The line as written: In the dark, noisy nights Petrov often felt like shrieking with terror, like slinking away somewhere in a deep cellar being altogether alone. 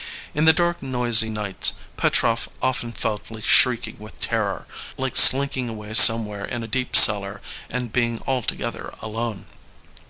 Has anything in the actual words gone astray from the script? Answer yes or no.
yes